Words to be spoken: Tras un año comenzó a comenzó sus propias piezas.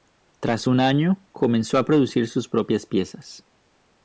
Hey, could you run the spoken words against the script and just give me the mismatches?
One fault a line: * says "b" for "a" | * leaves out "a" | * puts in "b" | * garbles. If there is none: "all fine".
* says "producir" for "comenzó"